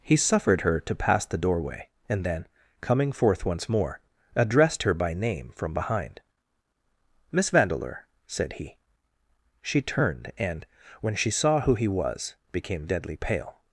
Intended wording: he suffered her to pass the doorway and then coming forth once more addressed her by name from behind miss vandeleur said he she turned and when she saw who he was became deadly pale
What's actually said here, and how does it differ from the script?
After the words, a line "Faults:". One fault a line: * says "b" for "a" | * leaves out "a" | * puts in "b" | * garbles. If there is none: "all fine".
he suffered her to pass the doorway and then coming forth once more addressed her by name from behind miss vandeleur said he she turned and when she saw who he was became deadly pale
Faults:
all fine